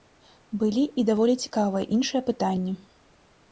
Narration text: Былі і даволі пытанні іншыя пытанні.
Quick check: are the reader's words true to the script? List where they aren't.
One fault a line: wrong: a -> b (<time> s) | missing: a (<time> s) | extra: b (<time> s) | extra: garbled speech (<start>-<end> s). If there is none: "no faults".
wrong: пытанні -> цікавыя (1.4 s)